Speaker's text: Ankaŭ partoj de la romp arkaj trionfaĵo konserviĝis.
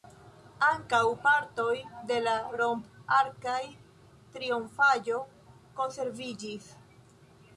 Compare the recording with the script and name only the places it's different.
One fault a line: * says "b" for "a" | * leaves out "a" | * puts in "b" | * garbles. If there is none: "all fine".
all fine